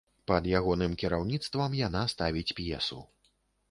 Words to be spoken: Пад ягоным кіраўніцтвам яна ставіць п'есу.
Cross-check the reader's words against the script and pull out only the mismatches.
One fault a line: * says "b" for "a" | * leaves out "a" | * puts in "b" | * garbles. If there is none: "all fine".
all fine